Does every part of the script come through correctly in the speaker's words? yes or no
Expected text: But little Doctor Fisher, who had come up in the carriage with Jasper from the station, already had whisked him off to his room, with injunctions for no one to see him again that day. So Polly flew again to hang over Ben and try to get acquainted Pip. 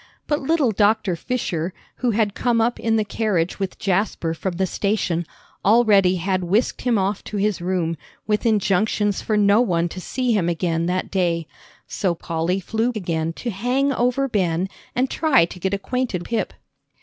yes